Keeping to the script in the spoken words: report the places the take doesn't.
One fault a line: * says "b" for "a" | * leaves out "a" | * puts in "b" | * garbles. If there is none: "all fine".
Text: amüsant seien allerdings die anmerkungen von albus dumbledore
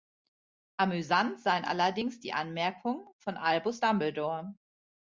all fine